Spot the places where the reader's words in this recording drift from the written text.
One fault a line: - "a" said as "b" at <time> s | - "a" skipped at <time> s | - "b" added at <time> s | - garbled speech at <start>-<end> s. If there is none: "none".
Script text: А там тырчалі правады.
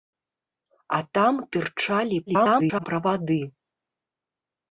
- garbled speech at 2.3-2.9 s